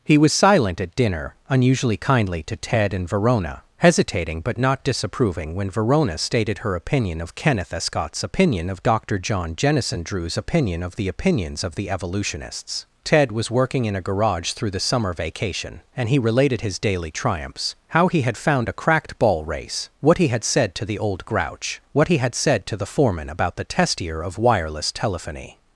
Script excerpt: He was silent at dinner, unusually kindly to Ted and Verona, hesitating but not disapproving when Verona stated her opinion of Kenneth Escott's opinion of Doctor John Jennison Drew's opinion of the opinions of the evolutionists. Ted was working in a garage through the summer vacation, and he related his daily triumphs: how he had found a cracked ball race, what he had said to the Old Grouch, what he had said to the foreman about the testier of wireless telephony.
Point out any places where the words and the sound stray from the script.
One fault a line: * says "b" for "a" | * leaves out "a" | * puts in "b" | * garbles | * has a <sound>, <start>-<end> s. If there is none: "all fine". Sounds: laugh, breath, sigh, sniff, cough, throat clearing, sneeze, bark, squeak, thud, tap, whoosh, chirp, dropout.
all fine